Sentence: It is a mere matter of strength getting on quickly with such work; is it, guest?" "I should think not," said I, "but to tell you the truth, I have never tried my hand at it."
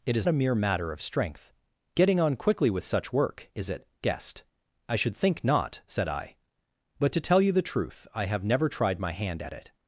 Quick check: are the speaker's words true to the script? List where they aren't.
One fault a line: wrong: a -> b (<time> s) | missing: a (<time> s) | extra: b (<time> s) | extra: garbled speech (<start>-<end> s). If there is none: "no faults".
no faults